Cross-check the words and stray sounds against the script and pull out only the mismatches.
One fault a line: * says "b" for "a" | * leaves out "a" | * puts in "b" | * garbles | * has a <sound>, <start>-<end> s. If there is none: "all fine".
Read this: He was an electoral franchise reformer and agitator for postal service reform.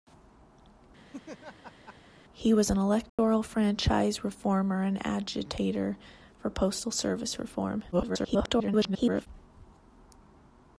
* has a laugh, 1.1-2.0 s
* has a dropout, 3.1-3.2 s
* garbles